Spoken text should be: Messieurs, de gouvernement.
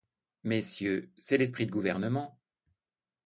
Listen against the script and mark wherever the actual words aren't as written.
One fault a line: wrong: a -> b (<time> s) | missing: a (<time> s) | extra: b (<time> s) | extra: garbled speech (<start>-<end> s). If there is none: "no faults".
extra: c'est l'esprit (1.2 s)